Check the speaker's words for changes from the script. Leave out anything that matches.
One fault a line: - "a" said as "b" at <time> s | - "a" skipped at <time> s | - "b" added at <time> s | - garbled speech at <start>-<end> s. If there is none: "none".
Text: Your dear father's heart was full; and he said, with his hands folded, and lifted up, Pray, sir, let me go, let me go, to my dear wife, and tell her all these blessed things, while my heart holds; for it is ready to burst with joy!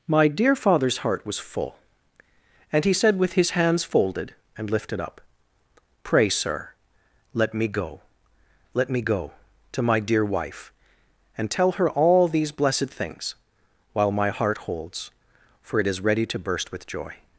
- "Your" said as "My" at 0.1 s